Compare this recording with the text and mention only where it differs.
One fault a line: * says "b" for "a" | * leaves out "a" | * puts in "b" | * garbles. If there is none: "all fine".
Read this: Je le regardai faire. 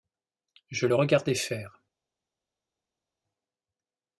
all fine